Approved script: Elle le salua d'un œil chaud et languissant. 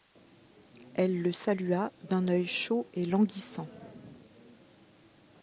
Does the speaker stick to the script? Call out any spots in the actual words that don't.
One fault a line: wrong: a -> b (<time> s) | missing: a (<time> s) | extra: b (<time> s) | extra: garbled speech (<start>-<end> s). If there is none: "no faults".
no faults